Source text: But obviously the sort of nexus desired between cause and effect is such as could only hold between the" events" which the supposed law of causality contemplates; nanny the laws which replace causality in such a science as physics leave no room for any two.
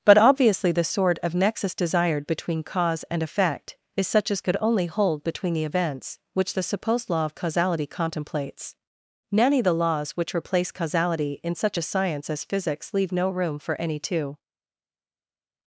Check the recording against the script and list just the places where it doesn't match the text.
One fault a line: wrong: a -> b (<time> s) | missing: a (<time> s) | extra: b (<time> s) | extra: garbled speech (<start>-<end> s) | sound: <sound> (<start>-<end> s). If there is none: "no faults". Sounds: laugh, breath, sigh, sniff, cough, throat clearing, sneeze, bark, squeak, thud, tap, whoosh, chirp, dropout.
no faults